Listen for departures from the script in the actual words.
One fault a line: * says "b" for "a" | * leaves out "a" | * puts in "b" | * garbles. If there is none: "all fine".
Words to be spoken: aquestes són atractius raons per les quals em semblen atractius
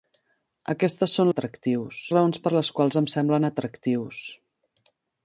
all fine